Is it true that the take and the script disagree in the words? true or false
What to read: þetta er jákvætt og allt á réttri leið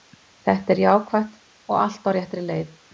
false